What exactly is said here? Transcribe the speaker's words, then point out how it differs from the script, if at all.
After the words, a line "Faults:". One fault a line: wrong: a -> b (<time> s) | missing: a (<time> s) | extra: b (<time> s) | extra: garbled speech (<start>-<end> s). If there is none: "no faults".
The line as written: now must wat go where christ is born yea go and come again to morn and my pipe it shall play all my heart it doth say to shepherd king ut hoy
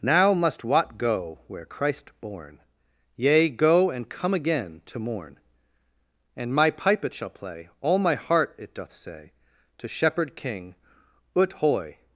now must wat go where christ born yea go and come again to morn and my pipe it shall play all my heart it doth say to shepherd king ut hoy
Faults:
missing: is (2.1 s)